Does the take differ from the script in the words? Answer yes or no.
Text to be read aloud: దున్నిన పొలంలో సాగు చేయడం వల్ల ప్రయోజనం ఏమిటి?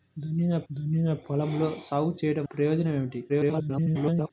yes